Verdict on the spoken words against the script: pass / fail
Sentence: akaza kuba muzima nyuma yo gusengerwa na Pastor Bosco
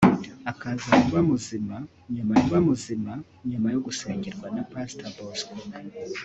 fail